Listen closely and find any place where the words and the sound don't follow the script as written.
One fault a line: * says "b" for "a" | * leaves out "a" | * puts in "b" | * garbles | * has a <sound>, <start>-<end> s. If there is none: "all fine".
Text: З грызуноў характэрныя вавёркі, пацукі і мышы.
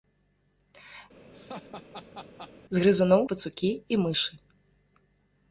* has a laugh, 1.3-2.5 s
* leaves out "характэрныя вавёркі"